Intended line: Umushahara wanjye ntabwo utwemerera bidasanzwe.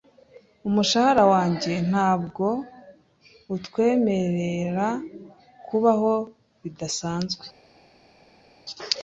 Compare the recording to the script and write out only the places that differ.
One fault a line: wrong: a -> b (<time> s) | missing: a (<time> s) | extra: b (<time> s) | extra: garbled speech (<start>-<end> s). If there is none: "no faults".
extra: kubaho (5.7 s)